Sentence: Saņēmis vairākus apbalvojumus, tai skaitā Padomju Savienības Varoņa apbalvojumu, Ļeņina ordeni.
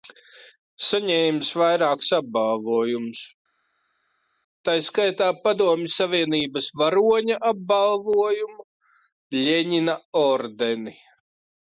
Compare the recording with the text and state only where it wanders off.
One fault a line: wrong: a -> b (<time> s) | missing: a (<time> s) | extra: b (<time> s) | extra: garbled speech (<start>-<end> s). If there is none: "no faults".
no faults